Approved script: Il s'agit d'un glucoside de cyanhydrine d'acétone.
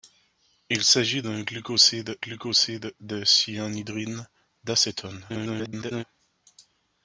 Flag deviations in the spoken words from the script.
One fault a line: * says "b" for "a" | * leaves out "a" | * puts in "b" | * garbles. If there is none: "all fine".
* puts in "glucoside"
* garbles